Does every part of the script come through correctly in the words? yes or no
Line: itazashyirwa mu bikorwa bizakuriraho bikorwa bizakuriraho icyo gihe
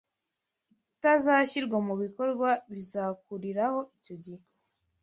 no